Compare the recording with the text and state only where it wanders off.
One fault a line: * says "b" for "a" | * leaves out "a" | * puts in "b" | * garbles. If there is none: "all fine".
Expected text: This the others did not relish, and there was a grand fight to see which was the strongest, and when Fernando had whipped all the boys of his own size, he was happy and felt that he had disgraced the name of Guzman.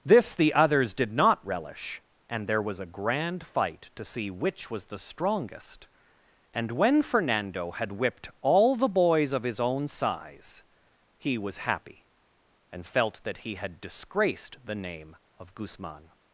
all fine